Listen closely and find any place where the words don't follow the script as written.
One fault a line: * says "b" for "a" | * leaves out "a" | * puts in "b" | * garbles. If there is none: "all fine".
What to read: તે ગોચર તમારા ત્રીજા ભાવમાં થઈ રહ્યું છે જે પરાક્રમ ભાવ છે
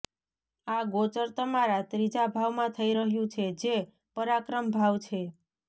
* says "આ" for "તે"